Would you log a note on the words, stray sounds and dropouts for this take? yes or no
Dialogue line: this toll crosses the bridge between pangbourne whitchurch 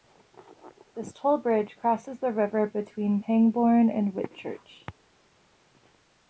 yes